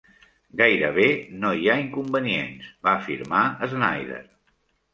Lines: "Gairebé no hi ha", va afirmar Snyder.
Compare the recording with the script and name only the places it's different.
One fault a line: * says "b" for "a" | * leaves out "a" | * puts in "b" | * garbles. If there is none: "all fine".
* puts in "inconvenients"